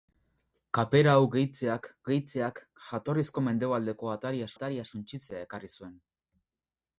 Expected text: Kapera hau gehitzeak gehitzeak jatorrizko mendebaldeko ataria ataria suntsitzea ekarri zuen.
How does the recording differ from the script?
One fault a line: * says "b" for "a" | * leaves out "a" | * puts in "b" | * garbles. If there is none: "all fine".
all fine